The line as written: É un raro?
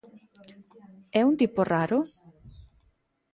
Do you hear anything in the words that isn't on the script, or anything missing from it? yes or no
yes